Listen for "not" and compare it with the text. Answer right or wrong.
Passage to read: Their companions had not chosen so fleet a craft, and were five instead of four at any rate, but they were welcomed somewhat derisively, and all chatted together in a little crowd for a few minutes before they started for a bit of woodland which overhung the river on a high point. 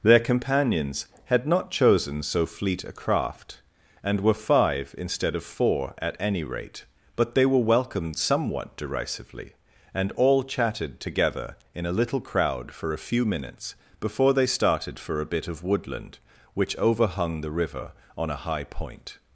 right